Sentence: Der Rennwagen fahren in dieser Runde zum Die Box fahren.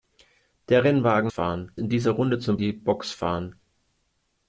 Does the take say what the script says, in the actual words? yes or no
yes